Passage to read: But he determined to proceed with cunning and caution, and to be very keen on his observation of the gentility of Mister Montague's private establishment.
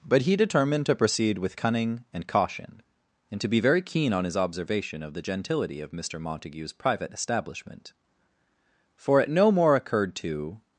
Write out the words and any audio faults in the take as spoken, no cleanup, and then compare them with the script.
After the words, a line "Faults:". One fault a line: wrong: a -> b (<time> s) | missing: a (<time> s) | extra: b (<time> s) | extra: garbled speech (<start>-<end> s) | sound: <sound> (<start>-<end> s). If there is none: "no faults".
But he determined to proceed with cunning and caution, and to be very keen on his observation of the gentility of Mister Montague's private establishment. For it no more occurred to
Faults:
extra: For it no more occurred to (9.0 s)